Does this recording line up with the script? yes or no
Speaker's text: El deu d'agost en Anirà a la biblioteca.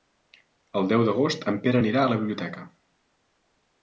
no